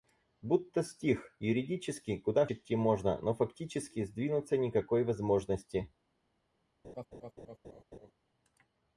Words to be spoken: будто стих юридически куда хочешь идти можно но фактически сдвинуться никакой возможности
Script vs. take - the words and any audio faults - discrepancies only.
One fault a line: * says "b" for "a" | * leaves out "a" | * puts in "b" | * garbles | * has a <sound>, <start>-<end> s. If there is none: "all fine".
* leaves out "хочешь"
* has a laugh, 6.8-8.1 s